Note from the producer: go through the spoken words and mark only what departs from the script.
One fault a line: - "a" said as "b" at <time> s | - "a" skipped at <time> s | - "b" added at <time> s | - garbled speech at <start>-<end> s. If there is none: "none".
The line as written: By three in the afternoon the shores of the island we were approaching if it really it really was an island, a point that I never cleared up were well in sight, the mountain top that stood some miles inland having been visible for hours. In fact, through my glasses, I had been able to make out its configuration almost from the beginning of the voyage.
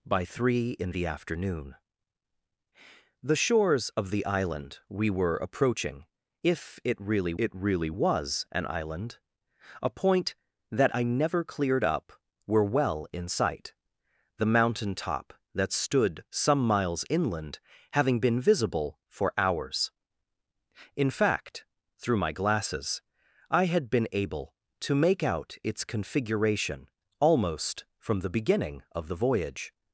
none